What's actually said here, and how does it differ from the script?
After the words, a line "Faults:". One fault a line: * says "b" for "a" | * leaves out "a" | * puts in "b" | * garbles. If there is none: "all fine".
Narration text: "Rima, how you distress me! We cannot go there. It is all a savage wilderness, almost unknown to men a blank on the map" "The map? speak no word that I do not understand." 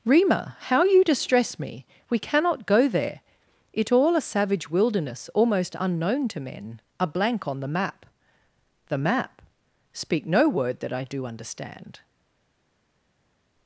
"Rima, how you distress me! We cannot go there. It all a savage wilderness, almost unknown to men a blank on the map" "The map? speak no word that I do understand."
Faults:
* leaves out "is"
* leaves out "not"